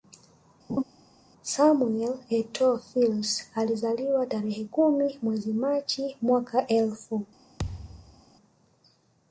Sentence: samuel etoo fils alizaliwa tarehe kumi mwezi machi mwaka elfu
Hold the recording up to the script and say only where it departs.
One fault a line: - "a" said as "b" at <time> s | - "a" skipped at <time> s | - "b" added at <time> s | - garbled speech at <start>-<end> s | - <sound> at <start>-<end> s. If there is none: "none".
- laugh at 0.7-0.8 s
- thud at 7.6-8.2 s